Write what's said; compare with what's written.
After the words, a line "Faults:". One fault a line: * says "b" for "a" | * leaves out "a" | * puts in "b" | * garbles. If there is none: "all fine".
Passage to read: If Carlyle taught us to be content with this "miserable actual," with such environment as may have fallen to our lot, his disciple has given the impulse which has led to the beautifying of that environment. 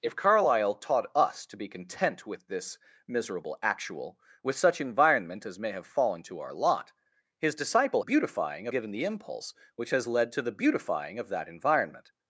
If Carlyle taught us to be content with this "miserable actual," with such environment as may have fallen to our lot, his disciple beautifying given the impulse which has led to the beautifying of that environment.
Faults:
* says "beautifying" for "has"